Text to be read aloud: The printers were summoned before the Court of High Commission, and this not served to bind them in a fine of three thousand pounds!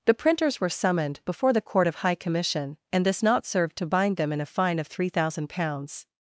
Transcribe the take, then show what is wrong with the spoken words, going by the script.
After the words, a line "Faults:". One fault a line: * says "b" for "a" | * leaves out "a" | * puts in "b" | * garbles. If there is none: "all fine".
The printers were summoned before the Court of High Commission, and this not served to bind them in a fine of three thousand pounds!
Faults:
all fine